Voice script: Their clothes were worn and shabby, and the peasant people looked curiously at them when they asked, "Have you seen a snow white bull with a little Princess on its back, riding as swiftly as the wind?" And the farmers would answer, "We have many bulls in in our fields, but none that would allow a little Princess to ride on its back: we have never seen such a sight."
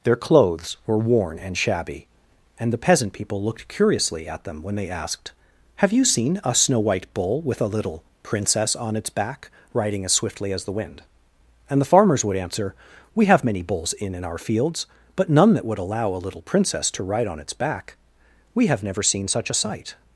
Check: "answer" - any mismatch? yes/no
no